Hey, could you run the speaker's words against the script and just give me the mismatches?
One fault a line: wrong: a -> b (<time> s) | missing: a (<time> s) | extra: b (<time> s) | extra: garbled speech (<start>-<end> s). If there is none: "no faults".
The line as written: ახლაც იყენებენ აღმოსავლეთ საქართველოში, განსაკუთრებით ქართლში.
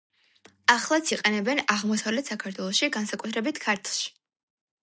no faults